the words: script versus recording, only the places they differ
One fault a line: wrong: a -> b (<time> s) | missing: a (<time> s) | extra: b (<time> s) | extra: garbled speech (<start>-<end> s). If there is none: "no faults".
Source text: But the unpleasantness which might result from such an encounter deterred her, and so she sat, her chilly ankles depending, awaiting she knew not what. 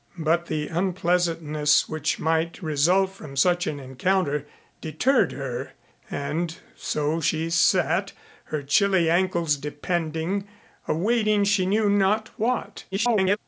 extra: garbled speech (12.9-13.4 s)